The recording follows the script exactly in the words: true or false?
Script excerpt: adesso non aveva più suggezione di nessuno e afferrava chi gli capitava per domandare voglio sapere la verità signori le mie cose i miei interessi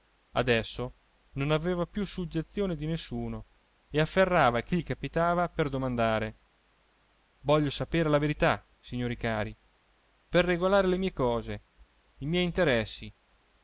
false